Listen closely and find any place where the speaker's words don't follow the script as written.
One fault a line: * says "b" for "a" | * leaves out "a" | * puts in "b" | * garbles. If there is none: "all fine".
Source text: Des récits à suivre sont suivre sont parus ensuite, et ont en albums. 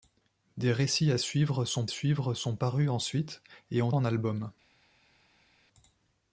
all fine